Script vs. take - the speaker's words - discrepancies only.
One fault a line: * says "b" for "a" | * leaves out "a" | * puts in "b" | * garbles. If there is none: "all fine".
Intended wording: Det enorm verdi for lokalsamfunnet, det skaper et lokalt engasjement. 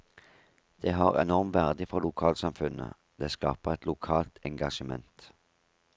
* puts in "har"